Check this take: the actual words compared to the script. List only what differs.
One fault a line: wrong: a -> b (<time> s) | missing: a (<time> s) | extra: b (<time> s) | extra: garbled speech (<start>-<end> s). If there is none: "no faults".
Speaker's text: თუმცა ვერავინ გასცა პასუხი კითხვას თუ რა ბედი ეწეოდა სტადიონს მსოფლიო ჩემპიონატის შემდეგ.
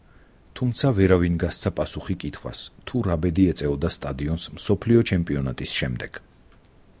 no faults